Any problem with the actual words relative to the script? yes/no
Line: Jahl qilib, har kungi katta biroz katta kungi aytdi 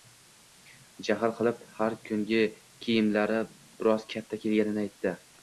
yes